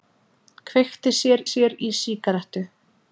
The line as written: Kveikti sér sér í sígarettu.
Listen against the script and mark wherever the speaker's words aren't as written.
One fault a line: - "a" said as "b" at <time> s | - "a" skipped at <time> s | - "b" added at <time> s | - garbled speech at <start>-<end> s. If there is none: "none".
none